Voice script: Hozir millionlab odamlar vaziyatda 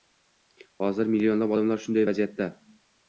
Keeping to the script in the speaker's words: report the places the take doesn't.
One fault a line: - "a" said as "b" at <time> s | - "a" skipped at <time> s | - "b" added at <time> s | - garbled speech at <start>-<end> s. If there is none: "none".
- "shunday" added at 1.9 s